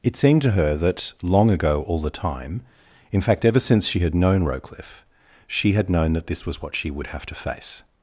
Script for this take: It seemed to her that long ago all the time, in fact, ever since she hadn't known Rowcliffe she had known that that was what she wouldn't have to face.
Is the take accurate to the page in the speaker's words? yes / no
no